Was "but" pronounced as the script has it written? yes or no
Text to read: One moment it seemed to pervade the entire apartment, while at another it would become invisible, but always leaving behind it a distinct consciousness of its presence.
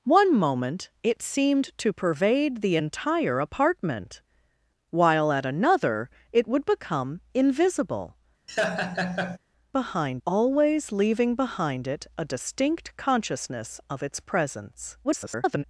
no